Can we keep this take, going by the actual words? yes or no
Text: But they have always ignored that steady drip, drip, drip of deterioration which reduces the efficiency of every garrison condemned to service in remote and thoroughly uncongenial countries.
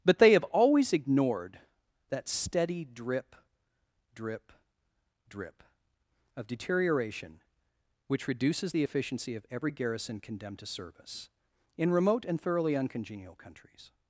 yes